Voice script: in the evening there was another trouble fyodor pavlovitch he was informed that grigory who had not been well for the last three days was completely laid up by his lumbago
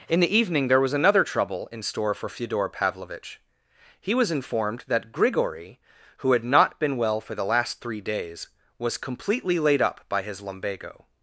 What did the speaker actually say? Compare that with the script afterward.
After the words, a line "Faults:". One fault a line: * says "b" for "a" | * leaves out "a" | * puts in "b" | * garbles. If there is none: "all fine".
in the evening there was another trouble in store for fyodor pavlovitch he was informed that grigory who had not been well for the last three days was completely laid up by his lumbago
Faults:
* puts in "in store for"